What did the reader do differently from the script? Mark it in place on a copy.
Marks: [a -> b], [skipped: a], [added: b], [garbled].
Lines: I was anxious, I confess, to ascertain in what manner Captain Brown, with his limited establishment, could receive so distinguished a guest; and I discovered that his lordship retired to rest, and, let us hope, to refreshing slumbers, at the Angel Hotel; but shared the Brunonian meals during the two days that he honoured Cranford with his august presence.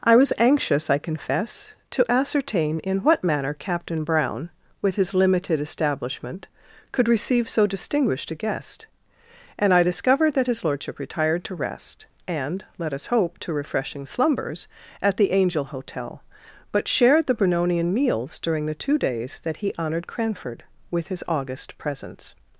I was anxious, I confess, to ascertain in what manner Captain Brown, with his limited establishment, could receive so distinguished a guest; and I discovered that his lordship retired to rest, and, let us hope, to refreshing slumbers, at the Angel Hotel; but shared the Brunonian meals during the two days that he honoured Cranford with his august presence.